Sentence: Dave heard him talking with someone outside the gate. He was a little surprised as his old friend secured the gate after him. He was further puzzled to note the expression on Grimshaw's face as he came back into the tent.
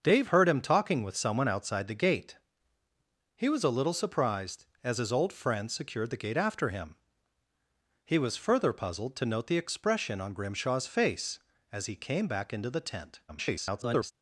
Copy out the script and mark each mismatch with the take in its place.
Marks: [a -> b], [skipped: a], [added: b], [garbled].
Dave heard him talking with someone outside the gate. He was a little surprised as his old friend secured the gate after him. He was further puzzled to note the expression on Grimshaw's face as he came back into the tent. [garbled]